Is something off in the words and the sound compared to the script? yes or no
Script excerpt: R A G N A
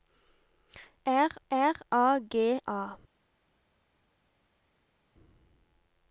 yes